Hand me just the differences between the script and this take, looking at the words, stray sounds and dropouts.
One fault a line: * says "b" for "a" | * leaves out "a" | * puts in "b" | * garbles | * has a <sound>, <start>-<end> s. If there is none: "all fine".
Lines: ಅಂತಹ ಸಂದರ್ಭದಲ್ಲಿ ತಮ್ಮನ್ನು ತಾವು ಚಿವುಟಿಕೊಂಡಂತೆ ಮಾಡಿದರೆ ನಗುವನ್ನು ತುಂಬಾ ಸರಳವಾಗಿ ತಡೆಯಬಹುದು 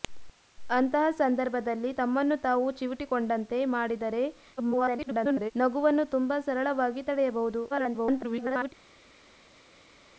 * garbles
* garbles